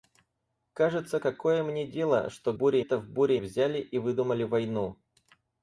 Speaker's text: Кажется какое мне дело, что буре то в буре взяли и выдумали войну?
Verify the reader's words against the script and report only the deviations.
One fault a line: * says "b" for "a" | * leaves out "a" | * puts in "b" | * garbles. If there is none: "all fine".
all fine